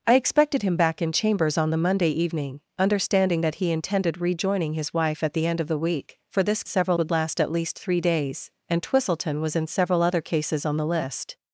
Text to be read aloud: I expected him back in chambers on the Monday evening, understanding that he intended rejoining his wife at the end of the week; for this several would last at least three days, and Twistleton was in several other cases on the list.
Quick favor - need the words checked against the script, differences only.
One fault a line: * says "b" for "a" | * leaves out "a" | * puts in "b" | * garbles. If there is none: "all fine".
all fine